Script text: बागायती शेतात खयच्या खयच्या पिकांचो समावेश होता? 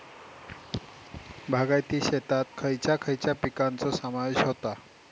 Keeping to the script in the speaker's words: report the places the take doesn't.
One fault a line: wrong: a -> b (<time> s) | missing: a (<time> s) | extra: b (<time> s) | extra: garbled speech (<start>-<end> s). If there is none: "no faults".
no faults